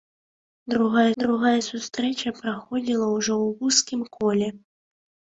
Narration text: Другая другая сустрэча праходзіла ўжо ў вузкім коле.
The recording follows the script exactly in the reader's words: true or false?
true